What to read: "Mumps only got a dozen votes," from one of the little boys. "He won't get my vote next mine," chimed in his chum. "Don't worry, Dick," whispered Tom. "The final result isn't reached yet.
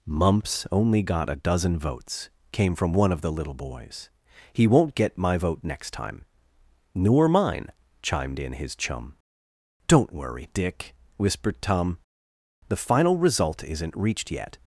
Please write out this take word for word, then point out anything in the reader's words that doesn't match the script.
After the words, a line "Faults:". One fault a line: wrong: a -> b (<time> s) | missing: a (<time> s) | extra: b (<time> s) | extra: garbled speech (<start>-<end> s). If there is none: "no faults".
"Mumps only got a dozen votes," came from one of the little boys. "He won't get my vote next time." "Nor mine," chimed in his chum. "Don't worry, Dick," whispered Tom. "The final result isn't reached yet.
Faults:
extra: came (2.5 s)
extra: time Nor (5.9 s)